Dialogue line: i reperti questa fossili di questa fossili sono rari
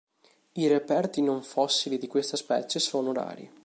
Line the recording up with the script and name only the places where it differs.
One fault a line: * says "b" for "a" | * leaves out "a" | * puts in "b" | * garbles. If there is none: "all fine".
* says "non" for "questa"
* says "specie" for "fossili"